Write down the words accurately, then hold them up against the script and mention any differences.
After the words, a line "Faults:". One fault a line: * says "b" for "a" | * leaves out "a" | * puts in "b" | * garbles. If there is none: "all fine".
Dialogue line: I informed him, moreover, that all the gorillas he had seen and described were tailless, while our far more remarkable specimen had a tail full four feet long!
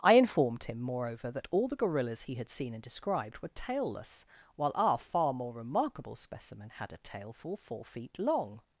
I informed him, moreover, that all the gorillas he had seen and described were tailless, while our far more remarkable specimen had a tail full four feet long!
Faults:
all fine